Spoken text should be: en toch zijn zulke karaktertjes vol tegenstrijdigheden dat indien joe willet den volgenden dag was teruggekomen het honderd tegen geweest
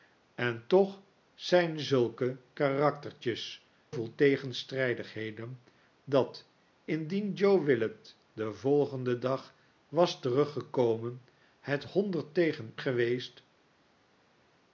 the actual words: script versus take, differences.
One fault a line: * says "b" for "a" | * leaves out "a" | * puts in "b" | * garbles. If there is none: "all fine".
all fine